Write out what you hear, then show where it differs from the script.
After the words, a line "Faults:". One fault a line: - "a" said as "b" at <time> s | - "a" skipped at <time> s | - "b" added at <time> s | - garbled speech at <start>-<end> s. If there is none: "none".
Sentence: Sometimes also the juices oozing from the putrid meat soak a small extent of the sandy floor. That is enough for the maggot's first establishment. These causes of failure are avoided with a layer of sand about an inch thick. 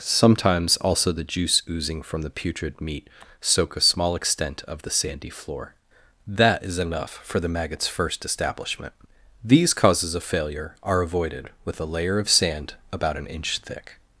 Sometimes also the juice oozing from the putrid meat soak a small extent of the sandy floor. That is enough for the maggot's first establishment. These causes of failure are avoided with a layer of sand about an inch thick.
Faults:
- "juices" said as "juice" at 1.2 s